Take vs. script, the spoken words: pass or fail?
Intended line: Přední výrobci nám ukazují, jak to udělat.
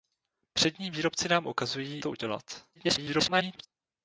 fail